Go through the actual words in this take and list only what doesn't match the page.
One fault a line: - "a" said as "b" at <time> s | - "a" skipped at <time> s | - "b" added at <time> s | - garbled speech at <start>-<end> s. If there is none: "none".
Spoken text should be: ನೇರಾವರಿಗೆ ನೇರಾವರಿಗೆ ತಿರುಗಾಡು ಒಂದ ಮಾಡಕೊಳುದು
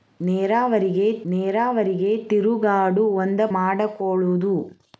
none